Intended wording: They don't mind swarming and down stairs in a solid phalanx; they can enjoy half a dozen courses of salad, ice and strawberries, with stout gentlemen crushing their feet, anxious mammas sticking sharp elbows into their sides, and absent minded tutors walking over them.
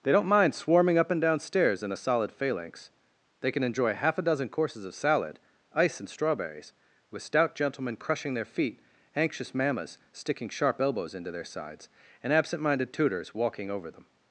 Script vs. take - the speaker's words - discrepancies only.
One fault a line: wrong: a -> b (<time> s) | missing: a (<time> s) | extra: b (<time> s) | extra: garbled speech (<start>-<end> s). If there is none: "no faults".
extra: up (1.0 s)